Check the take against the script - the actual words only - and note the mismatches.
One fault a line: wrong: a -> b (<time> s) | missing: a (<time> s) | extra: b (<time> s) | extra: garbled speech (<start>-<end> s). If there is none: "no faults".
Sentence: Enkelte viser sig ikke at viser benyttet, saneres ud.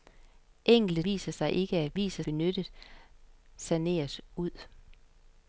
no faults